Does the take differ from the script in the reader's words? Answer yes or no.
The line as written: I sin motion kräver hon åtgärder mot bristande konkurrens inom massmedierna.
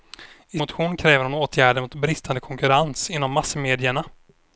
yes